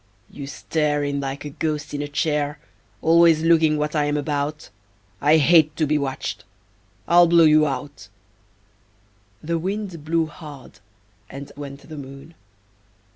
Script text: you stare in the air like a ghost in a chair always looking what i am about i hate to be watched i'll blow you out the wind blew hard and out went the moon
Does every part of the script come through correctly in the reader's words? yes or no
no